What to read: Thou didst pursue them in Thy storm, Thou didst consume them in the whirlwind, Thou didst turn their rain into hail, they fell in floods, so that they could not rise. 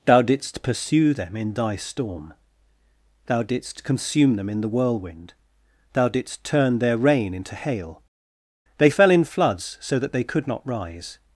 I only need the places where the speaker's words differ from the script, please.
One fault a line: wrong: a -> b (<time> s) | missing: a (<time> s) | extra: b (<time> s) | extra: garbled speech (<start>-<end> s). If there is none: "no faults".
no faults